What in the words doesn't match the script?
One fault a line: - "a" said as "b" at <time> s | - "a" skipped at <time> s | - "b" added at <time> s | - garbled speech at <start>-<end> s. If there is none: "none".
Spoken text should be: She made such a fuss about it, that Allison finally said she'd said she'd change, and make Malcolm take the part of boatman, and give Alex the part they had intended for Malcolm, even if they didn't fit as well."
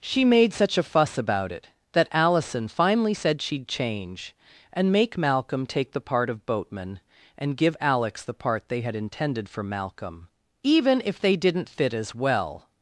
- "said she'd" skipped at 3.7 s